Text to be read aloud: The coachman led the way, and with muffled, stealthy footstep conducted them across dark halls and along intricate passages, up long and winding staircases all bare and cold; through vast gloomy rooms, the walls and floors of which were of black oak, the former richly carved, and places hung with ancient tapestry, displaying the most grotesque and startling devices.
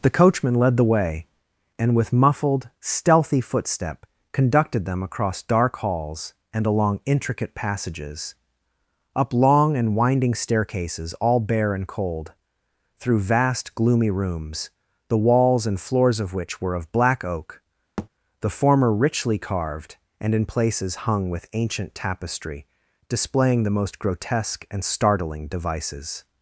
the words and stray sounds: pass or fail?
fail